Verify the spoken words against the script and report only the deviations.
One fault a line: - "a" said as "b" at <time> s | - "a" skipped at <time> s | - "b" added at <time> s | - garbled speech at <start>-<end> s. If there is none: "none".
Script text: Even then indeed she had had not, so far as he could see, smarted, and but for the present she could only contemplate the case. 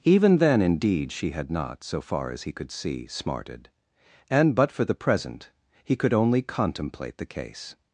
- "had" skipped at 1.5 s
- "she" said as "he" at 5.8 s